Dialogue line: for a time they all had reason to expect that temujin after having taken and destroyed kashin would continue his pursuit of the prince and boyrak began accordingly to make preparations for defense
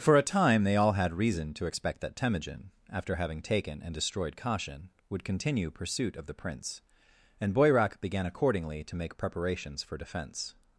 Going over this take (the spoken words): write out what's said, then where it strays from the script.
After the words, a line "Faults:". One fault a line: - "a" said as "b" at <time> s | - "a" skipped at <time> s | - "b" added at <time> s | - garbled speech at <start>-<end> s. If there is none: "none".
for a time they all had reason to expect that temujin after having taken and destroyed kashin would continue pursuit of the prince and boyrak began accordingly to make preparations for defense
Faults:
- "his" skipped at 5.7 s